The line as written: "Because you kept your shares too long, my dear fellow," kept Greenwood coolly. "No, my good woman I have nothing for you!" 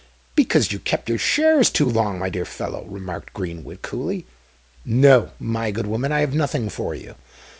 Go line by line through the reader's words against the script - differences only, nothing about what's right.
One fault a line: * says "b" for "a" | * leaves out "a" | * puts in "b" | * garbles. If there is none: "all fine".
* says "remarked" for "kept"